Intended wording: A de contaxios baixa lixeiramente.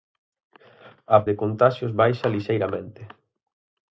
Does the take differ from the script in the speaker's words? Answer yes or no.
no